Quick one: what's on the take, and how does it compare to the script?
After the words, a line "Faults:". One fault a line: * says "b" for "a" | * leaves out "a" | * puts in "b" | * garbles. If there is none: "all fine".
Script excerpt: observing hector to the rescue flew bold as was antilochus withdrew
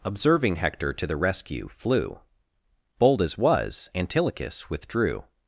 observing hector to the rescue flew bold as was antilochus withdrew
Faults:
all fine